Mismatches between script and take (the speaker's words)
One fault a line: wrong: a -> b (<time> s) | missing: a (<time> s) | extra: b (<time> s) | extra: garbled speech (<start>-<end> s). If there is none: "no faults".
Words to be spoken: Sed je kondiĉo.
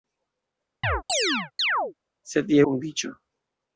no faults